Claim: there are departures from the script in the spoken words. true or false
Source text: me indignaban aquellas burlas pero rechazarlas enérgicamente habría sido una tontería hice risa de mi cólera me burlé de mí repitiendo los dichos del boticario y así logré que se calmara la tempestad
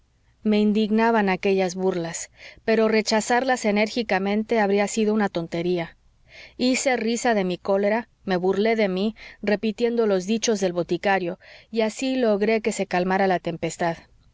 false